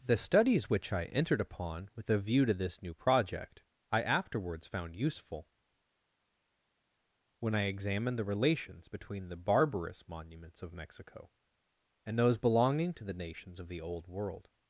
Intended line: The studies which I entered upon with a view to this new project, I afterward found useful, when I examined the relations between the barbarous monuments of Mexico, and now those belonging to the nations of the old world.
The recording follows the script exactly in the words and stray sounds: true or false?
false